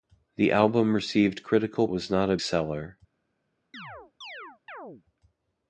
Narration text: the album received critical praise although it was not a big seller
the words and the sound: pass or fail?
fail